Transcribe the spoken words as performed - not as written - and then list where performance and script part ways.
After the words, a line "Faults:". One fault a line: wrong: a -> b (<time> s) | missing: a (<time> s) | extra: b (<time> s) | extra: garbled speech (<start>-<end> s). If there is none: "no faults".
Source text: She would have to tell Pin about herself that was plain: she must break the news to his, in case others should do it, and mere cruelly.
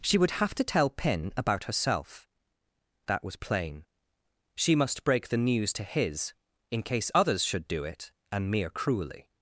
She would have to tell Pin about herself that was plain: she must break the news to his, in case others should do it, and mere cruelly.
Faults:
no faults